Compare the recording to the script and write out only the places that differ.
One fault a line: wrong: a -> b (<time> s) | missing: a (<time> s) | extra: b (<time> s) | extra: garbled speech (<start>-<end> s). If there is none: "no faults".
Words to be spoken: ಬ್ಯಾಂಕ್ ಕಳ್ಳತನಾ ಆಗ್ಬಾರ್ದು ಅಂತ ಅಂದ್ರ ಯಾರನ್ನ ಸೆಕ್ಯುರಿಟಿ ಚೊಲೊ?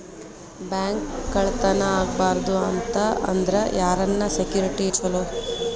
no faults